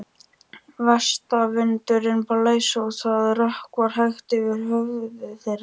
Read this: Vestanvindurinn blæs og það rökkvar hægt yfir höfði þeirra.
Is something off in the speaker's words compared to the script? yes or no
no